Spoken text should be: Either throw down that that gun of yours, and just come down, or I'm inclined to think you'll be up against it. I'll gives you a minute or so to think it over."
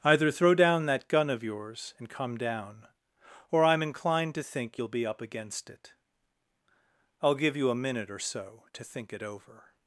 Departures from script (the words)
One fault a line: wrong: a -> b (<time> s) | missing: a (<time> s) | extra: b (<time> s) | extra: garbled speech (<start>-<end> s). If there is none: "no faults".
missing: that (1.1 s)
missing: just (2.1 s)
wrong: gives -> give (7.4 s)